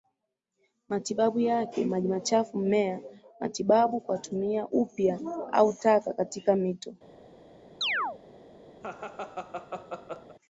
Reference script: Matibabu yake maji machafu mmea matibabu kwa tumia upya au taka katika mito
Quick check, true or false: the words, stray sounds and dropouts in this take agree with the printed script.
false